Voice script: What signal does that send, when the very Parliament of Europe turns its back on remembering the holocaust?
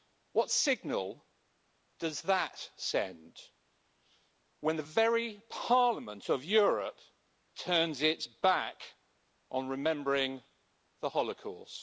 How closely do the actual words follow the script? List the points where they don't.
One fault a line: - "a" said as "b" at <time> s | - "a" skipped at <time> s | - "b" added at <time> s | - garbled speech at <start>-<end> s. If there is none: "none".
none